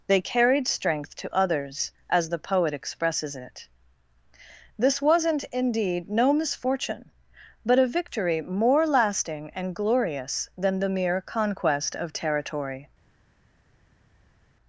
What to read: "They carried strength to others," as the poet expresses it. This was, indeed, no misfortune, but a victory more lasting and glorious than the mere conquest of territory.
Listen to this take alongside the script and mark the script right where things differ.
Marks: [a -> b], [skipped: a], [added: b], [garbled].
"They carried strength to others," as the poet expresses it. This [was, -> wasn't] indeed, no misfortune, but a victory more lasting and glorious than the mere conquest of territory.